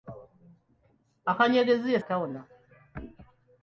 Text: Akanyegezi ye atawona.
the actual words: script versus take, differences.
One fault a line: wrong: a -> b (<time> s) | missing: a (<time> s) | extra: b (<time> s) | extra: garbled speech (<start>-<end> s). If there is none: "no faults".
no faults